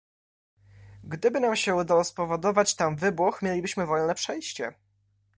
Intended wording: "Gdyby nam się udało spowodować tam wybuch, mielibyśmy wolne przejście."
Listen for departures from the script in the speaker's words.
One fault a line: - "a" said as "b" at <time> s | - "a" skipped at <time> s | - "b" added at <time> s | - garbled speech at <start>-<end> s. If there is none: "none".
none